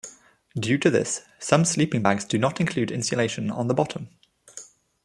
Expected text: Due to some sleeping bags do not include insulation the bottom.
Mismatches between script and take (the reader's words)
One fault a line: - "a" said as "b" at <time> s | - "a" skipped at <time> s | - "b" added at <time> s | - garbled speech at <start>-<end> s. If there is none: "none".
- "this" added at 0.9 s
- "on" added at 3.5 s